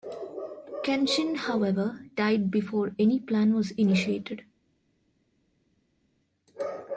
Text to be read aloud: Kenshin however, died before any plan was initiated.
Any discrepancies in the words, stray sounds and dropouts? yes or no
no